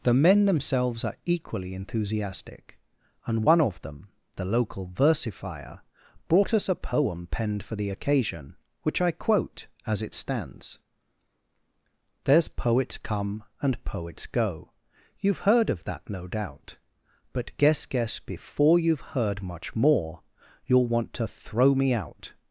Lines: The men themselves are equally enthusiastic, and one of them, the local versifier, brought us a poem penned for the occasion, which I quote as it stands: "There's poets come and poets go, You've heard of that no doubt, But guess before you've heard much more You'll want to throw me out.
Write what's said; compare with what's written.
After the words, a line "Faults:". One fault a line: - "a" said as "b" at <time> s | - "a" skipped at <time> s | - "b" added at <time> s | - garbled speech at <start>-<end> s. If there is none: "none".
The men themselves are equally enthusiastic, and one of them, the local versifier, brought us a poem penned for the occasion, which I quote as it stands: "There's poets come and poets go, You've heard of that no doubt, But guess guess before you've heard much more You'll want to throw me out.
Faults:
- "guess" added at 17.9 s